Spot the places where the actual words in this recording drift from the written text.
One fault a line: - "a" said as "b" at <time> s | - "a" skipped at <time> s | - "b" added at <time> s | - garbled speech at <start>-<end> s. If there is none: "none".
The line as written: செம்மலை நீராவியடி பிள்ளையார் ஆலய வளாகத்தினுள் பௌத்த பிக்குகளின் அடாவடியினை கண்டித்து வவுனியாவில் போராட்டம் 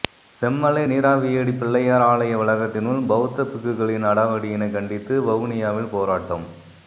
none